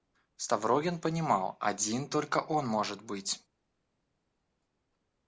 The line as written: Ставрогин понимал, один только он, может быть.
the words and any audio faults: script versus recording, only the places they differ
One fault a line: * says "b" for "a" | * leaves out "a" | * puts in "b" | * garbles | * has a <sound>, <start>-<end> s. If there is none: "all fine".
all fine